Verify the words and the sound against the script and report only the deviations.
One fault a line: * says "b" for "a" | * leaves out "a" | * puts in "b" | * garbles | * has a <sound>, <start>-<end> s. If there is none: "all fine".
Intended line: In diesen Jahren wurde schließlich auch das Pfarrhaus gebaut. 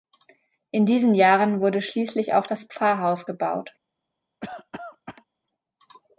* has a cough, 4.4-5.2 s